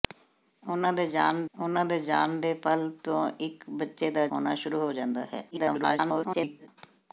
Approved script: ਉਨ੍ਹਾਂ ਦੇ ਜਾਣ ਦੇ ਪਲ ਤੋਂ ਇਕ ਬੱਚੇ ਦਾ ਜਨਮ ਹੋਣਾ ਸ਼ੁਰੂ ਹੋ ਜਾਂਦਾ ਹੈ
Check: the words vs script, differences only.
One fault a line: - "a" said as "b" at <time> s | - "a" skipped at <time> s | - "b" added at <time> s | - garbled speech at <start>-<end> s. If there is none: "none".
- "ਉਨ੍ਹਾਂ" added at 1.5 s
- "ਜਾਣ ਦੇ" added at 2.0 s
- "ਜਨਮ" skipped at 4.3 s
- garbled speech at 5.5-6.7 s